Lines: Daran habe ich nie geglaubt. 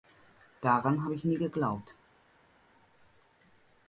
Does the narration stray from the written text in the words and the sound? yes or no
no